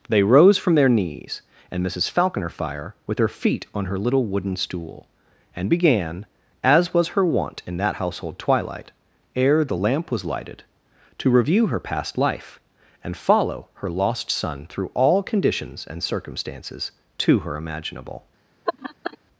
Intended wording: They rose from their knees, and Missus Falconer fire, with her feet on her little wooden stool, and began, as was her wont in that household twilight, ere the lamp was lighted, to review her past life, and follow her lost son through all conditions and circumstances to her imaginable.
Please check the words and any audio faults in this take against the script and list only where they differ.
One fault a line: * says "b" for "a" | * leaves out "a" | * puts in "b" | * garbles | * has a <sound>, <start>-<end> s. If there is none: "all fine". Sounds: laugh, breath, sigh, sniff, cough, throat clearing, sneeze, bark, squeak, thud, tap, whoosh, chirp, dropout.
* has a laugh, 18.7-19.2 s